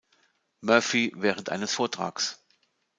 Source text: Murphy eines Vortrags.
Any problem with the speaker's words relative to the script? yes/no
yes